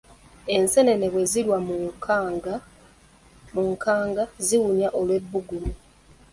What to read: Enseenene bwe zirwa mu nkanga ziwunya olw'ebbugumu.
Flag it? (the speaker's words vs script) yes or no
no